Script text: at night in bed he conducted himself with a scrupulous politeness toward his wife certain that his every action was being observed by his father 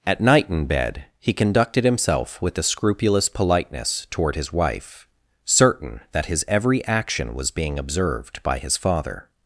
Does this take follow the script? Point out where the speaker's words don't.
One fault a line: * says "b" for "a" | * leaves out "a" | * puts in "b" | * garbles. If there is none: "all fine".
* says "the" for "a"